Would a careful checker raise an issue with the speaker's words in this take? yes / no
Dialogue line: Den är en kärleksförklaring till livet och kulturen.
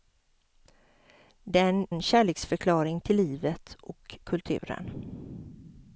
yes